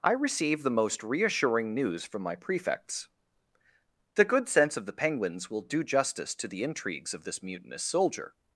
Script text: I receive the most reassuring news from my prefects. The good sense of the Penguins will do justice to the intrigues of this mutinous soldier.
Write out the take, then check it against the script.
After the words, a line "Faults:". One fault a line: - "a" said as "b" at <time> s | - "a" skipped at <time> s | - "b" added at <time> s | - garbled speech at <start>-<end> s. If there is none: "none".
I receive the most reassuring news from my prefects. The good sense of the Penguins will do justice to the intrigues of this mutinous soldier.
Faults:
none